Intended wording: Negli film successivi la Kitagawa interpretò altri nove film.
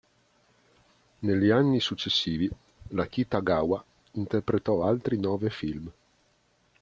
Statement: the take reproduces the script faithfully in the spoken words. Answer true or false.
false